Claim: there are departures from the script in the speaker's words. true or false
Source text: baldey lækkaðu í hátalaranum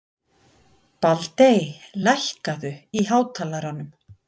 false